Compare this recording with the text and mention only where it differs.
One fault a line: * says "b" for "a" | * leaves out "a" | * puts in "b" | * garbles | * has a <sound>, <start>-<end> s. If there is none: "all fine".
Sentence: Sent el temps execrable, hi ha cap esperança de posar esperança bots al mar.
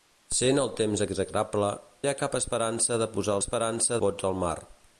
all fine